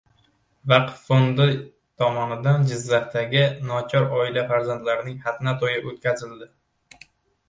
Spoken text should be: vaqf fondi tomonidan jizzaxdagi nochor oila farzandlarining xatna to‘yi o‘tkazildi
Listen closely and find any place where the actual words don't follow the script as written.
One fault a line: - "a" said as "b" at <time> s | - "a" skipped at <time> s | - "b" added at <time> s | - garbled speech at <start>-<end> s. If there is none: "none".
none